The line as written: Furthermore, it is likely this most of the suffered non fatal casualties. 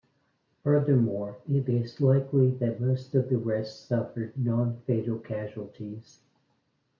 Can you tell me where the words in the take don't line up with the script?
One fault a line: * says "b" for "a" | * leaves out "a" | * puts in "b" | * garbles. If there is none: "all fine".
* says "that" for "this"
* puts in "rest"